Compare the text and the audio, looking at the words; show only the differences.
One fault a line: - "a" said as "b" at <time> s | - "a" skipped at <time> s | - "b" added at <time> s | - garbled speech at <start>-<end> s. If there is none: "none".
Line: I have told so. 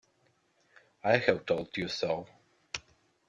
- "you" added at 1.7 s